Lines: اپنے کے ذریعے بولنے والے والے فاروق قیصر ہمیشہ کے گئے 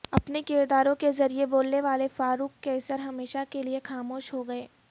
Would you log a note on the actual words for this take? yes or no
yes